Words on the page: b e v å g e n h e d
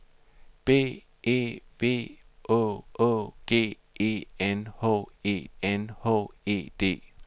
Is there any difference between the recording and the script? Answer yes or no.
yes